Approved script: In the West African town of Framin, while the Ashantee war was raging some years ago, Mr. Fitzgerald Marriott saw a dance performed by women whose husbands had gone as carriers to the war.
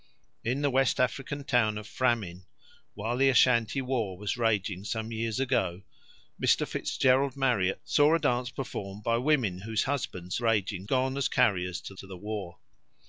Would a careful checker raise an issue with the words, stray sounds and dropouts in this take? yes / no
yes